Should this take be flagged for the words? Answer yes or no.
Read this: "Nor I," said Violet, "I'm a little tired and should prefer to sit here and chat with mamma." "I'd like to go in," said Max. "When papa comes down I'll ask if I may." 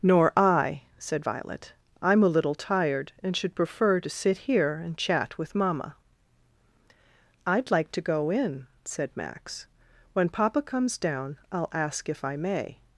no